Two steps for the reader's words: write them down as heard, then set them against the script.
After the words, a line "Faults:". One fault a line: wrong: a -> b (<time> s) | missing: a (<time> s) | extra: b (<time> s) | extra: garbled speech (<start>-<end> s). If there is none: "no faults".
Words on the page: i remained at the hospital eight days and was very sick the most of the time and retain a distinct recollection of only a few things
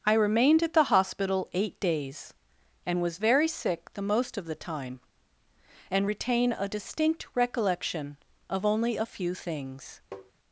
i remained at the hospital eight days and was very sick the most of the time and retain a distinct recollection of only a few things
Faults:
no faults